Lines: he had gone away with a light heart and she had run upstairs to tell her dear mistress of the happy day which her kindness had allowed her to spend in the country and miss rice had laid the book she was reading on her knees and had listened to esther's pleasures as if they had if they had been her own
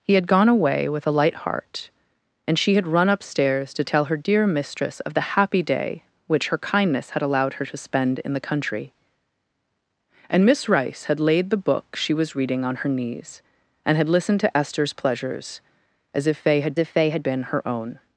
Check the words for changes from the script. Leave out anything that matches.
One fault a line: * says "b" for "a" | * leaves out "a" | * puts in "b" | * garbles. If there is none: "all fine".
all fine